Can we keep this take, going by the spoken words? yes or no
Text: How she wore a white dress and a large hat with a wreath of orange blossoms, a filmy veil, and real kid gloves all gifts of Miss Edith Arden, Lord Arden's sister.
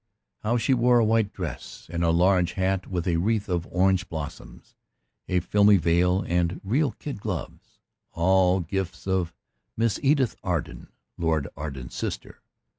yes